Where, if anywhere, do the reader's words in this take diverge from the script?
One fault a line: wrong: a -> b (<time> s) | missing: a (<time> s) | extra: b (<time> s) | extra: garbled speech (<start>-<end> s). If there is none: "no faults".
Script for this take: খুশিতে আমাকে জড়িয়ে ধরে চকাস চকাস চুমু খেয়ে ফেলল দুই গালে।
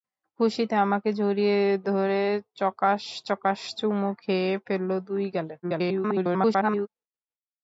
extra: garbled speech (5.6-6.9 s)